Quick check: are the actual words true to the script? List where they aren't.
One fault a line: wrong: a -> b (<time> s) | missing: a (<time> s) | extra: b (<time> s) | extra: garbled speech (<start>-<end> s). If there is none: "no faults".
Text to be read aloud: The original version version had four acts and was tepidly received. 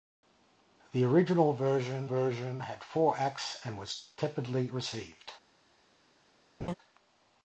no faults